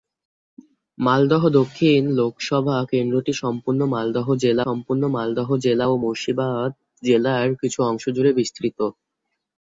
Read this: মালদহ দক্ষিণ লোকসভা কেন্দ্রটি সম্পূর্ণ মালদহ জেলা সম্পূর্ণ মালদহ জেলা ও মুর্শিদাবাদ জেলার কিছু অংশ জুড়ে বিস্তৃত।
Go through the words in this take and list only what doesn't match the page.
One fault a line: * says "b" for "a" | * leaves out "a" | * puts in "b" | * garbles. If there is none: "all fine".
all fine